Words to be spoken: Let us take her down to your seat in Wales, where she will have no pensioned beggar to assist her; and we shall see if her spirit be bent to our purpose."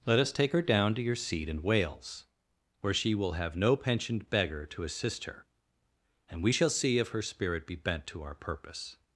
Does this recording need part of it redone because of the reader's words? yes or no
no